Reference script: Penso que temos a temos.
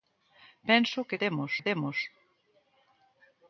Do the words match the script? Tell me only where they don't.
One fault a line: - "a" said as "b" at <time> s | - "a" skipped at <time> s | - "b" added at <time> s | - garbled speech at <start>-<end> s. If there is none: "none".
none